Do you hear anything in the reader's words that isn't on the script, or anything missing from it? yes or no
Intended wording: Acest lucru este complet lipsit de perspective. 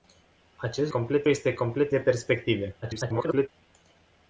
yes